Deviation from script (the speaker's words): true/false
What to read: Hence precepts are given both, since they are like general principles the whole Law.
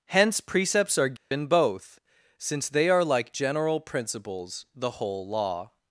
false